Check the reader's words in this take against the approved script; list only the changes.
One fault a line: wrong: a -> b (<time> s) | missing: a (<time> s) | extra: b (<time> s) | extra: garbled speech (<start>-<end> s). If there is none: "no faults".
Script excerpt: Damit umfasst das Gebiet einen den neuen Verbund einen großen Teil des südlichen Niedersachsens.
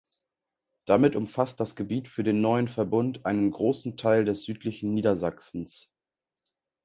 wrong: einen -> für (2.1 s)